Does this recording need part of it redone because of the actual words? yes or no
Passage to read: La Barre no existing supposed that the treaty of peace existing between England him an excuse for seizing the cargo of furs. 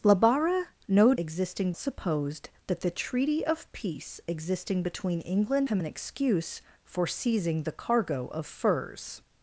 no